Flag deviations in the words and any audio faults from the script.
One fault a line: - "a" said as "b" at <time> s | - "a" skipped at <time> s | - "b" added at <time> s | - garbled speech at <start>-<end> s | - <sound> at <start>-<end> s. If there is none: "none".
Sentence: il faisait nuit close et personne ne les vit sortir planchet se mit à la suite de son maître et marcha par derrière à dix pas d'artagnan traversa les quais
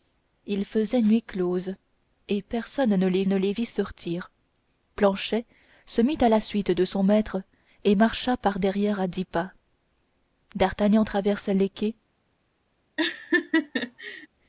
- "ne les" added at 3.2 s
- laugh at 13.0-14.3 s